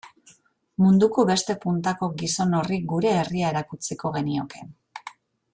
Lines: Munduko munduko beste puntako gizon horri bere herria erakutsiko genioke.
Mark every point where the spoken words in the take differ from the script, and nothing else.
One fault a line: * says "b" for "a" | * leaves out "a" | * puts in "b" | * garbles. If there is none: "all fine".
* leaves out "munduko"
* says "gure" for "bere"